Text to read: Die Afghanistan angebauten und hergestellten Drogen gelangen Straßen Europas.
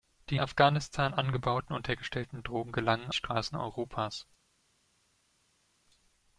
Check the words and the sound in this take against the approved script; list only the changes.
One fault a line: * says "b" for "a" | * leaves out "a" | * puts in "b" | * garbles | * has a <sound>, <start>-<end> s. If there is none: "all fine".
all fine